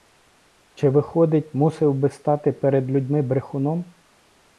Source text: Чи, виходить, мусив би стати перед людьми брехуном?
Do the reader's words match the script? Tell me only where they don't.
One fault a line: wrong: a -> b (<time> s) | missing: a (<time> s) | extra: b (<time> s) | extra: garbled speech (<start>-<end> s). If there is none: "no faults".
no faults